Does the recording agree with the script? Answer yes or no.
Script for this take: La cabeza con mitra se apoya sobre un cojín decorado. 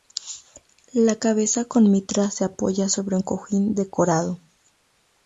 yes